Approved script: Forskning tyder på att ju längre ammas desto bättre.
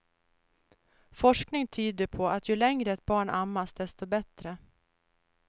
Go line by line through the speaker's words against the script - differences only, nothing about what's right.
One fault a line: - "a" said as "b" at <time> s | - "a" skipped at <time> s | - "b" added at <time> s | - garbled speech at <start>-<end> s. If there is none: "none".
- "ett barn" added at 2.9 s